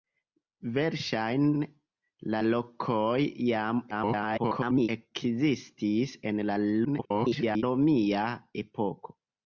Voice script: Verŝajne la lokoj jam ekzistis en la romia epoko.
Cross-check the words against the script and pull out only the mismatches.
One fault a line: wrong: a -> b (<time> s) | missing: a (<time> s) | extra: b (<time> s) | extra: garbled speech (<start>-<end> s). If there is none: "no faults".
extra: garbled speech (3.9-4.9 s)
extra: garbled speech (6.8-7.6 s)